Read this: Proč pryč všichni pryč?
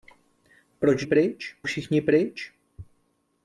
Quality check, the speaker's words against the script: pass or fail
pass